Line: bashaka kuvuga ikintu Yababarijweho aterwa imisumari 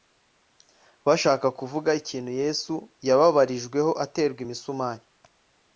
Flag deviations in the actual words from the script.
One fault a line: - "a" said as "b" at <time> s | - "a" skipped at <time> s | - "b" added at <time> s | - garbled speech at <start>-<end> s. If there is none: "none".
- "Yesu" added at 2.4 s